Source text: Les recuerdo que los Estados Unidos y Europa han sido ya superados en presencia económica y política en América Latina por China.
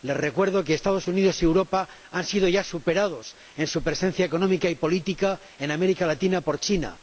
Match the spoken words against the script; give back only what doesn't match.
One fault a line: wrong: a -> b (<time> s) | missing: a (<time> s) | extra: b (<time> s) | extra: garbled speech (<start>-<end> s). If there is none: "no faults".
extra: su (3.7 s)